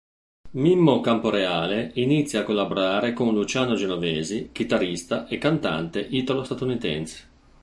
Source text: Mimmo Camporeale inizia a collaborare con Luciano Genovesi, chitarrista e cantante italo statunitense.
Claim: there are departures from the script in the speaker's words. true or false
false